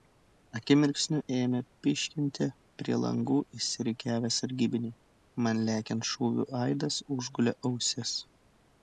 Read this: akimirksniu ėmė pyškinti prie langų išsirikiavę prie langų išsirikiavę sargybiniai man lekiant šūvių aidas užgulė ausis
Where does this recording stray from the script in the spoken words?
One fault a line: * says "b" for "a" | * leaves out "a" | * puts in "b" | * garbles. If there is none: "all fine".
* leaves out "prie langų išsirikiavę"